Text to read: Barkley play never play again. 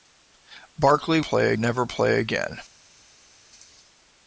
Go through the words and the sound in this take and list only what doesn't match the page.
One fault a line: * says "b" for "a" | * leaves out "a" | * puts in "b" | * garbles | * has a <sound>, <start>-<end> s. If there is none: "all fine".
all fine